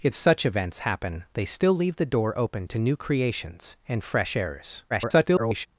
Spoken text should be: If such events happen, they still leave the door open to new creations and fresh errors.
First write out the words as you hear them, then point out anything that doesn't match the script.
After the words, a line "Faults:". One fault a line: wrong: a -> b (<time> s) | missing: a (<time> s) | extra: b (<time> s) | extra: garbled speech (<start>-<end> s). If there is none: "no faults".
If such events happen, they still leave the door open to new creations and fresh errors. [garbled]
Faults:
extra: garbled speech (4.9-5.7 s)